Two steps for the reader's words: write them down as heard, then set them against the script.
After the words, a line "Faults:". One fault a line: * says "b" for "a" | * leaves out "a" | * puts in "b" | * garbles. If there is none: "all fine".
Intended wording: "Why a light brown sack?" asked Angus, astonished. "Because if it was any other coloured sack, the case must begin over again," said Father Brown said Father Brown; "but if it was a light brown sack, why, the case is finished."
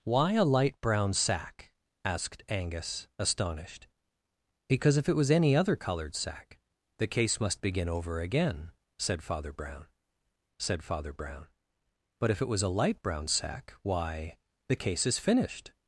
"Why a light brown sack?" asked Angus, astonished. "Because if it was any other coloured sack, the case must begin over again," said Father Brown said Father Brown; "but if it was a light brown sack, why, the case is finished."
Faults:
all fine